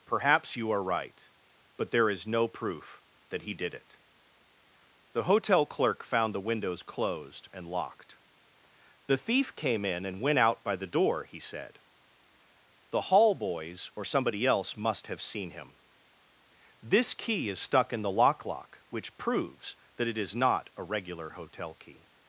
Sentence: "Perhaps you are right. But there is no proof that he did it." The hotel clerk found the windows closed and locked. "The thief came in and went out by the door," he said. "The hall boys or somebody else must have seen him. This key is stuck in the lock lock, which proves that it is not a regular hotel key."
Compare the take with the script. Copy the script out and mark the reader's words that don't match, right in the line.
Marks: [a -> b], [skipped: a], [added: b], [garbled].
"Perhaps you are right. But there is no proof that he did it." The hotel clerk found the windows closed and locked. "The thief came in and went out by the door," he said. "The hall boys or somebody else must have seen him. This key is stuck in the lock lock, which proves that it is not a regular hotel key."